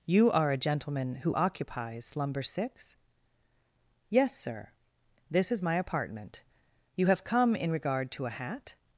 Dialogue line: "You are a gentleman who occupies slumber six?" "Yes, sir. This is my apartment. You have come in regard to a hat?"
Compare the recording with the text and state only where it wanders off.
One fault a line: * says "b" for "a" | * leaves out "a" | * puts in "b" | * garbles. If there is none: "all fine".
all fine